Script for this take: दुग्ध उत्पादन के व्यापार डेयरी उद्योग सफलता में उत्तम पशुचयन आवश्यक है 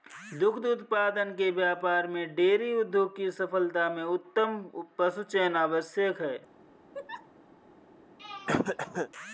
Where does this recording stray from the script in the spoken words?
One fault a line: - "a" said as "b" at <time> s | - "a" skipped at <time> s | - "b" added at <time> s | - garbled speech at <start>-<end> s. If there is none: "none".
- "में" added at 2.1 s
- "की" added at 3.2 s